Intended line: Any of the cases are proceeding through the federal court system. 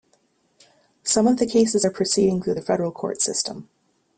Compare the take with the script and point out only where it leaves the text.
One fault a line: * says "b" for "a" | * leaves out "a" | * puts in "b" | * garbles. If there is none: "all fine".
* says "Some" for "Any"